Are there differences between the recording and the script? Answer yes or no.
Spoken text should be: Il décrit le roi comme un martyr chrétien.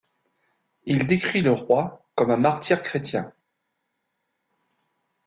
no